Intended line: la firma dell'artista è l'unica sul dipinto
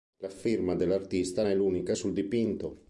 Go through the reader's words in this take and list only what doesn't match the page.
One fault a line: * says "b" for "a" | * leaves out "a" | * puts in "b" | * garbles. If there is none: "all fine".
all fine